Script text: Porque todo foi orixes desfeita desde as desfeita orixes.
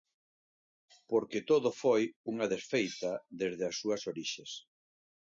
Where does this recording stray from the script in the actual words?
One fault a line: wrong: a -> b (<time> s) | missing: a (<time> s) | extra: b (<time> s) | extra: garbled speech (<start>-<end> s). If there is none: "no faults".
wrong: orixes -> unha (2.3 s)
wrong: desfeita -> súas (3.8 s)